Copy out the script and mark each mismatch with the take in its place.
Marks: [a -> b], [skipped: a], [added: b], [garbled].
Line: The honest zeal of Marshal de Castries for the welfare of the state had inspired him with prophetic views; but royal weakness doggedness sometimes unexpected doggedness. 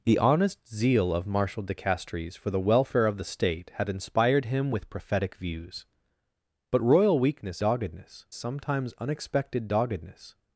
The honest zeal of Marshal de Castries for the welfare of the state had inspired him with prophetic views; but royal weakness doggedness sometimes unexpected doggedness.